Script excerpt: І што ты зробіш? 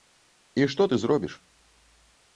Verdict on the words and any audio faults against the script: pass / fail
pass